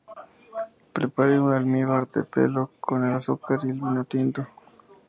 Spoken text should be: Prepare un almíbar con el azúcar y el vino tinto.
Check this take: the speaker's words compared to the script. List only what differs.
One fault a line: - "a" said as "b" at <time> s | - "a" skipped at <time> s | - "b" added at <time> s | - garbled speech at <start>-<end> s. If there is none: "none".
- "de pelo" added at 2.1 s